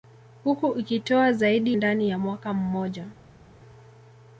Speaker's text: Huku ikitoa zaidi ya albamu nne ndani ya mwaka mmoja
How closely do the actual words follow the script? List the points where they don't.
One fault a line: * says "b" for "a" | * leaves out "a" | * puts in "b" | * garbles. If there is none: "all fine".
* leaves out "ya albamu nne"